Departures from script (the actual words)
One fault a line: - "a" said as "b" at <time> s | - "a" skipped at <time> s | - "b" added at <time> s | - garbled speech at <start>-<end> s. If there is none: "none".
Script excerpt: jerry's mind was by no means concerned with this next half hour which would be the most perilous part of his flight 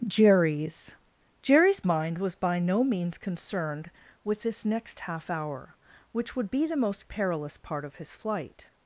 - "jerry's" added at 1.4 s